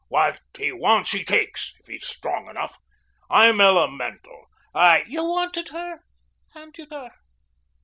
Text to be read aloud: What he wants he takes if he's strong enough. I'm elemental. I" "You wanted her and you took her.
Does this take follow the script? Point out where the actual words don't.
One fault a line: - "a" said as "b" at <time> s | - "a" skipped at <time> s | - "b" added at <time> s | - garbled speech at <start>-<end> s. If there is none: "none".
- "took" skipped at 6.9 s